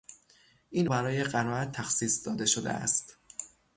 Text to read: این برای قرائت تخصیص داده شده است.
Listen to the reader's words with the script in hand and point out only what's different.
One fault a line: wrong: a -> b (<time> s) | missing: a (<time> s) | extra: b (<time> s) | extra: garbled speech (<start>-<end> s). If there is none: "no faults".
no faults